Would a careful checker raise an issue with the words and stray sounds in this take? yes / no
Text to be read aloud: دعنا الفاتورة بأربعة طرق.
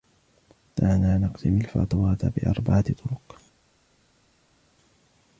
yes